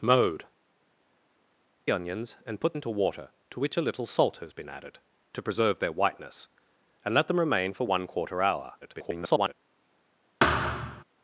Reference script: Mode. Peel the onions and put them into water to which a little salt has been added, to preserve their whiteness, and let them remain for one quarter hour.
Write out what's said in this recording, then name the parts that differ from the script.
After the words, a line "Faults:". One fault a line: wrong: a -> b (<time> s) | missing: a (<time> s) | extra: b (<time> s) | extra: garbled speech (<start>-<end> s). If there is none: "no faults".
Mode. Onions and put into water to which a little salt has been added, to preserve their whiteness, and let them remain for one quarter hour. [garbled]
Faults:
missing: Peel the (0.5 s)
missing: them (2.8 s)
extra: garbled speech (8.8-9.5 s)